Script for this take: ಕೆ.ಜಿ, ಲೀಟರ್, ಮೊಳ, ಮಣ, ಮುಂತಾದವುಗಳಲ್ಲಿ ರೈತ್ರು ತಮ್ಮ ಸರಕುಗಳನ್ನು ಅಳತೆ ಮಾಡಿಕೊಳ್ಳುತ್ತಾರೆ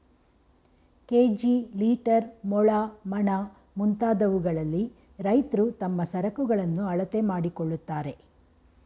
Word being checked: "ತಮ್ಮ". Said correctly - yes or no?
yes